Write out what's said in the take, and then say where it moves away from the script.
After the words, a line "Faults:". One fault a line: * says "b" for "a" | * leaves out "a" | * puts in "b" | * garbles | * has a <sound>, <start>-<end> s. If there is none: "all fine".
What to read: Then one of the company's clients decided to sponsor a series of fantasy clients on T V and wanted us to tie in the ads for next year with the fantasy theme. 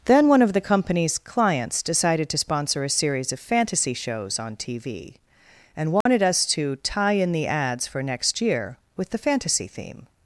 Then one of the company's clients decided to sponsor a series of fantasy shows on T V and wanted us to tie in the ads for next year with the fantasy theme.
Faults:
* says "shows" for "clients"
* has a dropout, 6.0-6.1 s